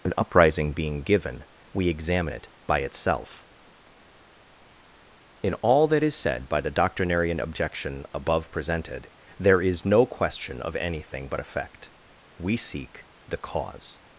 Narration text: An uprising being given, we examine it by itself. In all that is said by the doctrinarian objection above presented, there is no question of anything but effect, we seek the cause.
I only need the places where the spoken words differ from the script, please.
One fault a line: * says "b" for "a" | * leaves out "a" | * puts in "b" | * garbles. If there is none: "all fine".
all fine